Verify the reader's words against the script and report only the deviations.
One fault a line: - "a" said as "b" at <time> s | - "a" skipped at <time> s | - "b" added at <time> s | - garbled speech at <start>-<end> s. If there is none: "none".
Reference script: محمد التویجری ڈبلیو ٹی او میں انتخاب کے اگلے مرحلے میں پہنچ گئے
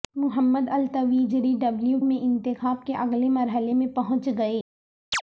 - "ٹی او" skipped at 2.0 s